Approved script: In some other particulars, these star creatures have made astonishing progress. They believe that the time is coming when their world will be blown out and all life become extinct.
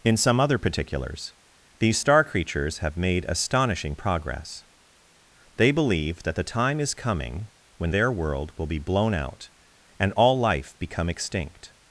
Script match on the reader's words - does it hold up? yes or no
yes